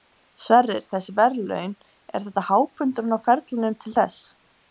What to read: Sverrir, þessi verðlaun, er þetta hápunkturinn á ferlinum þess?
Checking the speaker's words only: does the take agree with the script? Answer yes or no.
no